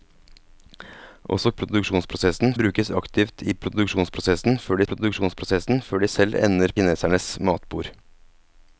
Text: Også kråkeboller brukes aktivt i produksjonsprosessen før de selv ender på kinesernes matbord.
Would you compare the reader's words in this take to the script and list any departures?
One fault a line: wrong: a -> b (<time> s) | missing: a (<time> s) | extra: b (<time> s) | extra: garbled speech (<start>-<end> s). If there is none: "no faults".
wrong: kråkeboller -> produksjonsprosessen (1.6 s)
extra: produksjonsprosessen før (4.9 s)
missing: på (6.8 s)